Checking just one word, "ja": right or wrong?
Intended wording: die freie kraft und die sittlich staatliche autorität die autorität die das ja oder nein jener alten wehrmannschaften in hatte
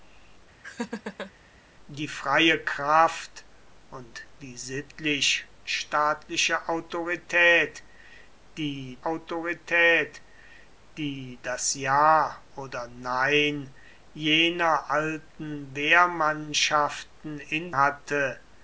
right